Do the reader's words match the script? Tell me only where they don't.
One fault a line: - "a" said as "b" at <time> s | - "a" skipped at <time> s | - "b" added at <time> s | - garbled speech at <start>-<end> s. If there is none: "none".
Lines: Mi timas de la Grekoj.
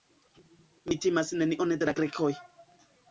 - "nenion" added at 1.4 s